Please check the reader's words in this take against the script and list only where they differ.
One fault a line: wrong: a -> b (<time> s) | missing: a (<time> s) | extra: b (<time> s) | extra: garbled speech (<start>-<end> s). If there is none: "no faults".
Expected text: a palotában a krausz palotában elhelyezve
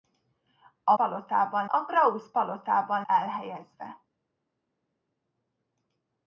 no faults